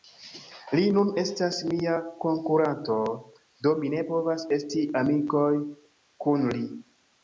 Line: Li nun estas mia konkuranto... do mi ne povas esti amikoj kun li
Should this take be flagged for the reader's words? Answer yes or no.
no